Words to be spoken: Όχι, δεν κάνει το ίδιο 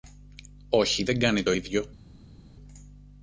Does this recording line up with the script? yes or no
yes